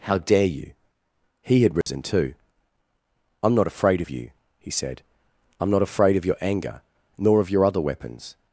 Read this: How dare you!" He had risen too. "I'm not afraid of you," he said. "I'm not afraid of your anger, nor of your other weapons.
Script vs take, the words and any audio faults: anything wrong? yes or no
yes